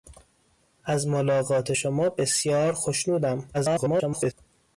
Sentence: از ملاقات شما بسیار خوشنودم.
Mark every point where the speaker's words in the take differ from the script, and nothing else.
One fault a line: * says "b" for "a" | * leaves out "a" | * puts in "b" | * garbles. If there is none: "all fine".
* garbles